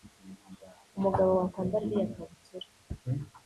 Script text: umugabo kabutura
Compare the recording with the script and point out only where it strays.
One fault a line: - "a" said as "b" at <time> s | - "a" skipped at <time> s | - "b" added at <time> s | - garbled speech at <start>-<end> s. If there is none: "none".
- "wakwambara iriya" added at 1.4 s